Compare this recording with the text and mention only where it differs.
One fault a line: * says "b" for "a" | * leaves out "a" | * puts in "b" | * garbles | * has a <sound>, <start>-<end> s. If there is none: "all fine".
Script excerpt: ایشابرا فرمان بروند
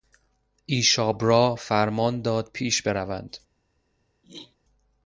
* puts in "داد پیش"
* has a throat clearing, 4.2-4.6 s